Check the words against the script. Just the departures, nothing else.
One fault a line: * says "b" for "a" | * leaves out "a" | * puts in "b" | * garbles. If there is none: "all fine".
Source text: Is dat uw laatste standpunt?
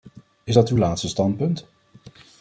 all fine